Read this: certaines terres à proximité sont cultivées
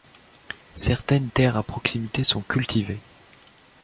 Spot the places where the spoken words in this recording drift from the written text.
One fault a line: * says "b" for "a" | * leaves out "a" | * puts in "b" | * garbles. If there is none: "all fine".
all fine